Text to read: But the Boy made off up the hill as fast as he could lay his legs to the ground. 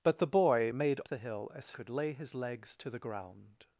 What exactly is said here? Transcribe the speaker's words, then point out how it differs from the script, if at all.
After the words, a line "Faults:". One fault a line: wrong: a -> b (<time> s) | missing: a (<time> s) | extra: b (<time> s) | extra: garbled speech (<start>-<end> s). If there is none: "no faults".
But the Boy made the hill as could lay his legs to the ground.
Faults:
missing: off up (1.0 s)
missing: fast as he (1.7 s)